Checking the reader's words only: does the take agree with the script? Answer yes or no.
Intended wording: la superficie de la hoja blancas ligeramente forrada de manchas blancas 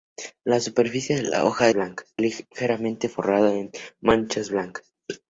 yes